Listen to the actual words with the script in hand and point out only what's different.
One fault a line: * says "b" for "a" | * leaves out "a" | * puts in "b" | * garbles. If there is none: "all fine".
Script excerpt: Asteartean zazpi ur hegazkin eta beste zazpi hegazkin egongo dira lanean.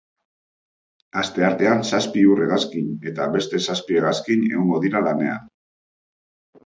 all fine